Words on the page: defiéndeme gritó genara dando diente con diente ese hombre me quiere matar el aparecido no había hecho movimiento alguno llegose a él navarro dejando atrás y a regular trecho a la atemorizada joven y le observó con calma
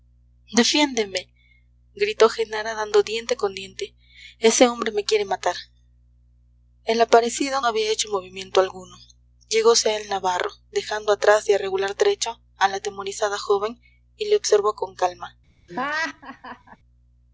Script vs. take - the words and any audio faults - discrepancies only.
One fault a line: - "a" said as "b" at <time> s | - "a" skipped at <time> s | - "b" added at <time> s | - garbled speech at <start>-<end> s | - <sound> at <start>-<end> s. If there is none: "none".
- "no" skipped at 7.6 s
- laugh at 15.7-16.8 s